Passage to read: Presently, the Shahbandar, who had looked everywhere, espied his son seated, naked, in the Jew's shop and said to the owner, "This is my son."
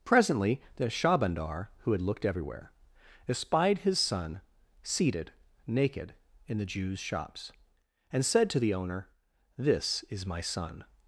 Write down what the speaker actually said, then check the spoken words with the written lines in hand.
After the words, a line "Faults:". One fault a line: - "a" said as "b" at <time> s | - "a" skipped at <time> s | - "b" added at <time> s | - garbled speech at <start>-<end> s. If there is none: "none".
Presently, the Shahbandar, who had looked everywhere, espied his son seated, naked, in the Jew's shops and said to the owner, "This is my son."
Faults:
- "shop" said as "shops" at 7.0 s